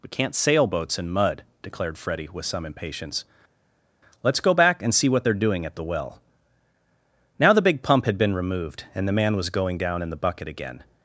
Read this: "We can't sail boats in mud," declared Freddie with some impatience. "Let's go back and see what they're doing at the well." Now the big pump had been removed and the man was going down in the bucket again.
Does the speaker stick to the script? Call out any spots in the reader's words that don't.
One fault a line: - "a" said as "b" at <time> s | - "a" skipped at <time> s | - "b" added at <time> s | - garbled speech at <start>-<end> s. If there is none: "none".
none